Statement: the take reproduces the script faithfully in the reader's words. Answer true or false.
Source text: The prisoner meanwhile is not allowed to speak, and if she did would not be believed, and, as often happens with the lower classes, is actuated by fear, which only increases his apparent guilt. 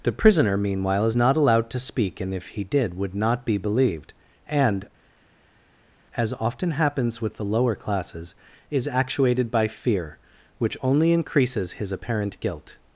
false